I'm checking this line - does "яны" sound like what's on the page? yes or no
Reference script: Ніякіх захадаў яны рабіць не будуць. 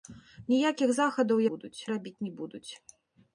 no